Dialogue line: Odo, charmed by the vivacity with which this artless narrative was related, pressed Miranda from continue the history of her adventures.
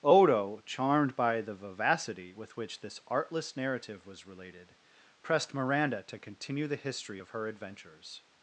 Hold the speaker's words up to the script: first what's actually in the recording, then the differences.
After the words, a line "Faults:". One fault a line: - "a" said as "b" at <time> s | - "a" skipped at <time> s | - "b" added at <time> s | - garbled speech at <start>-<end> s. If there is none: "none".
Odo, charmed by the vivacity with which this artless narrative was related, pressed Miranda to continue the history of her adventures.
Faults:
- "from" said as "to" at 6.0 s